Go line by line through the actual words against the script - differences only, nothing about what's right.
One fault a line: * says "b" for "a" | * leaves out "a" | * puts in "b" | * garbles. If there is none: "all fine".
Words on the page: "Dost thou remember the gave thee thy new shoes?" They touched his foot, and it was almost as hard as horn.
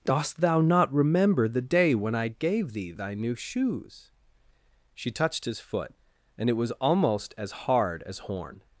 * puts in "not"
* puts in "day when I"
* says "She" for "They"